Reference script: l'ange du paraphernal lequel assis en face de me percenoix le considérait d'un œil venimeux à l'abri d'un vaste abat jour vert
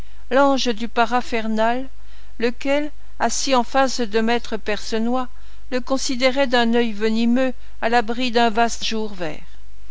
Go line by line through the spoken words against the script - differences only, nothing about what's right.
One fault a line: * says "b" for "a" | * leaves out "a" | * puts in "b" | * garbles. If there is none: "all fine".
* leaves out "abat"